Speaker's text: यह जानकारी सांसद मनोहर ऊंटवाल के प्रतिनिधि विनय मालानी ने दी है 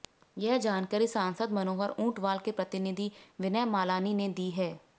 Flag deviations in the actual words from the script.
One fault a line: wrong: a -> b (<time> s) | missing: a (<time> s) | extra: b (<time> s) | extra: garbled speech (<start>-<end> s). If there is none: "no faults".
no faults